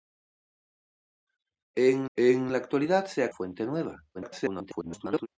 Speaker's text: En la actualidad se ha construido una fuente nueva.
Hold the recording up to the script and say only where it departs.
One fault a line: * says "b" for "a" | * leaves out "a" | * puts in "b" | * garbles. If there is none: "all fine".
* puts in "en"
* leaves out "construido una"
* garbles